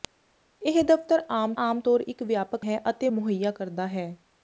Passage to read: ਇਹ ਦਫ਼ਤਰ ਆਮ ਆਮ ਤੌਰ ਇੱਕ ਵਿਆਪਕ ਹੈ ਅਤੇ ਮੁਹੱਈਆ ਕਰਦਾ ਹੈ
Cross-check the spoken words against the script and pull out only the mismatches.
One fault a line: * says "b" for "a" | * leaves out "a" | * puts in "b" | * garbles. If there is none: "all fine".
all fine